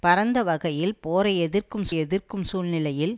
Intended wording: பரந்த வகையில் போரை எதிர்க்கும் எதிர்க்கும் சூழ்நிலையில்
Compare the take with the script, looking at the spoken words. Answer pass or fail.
pass